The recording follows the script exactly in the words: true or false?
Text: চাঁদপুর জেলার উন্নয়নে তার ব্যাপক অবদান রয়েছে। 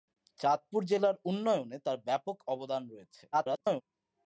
false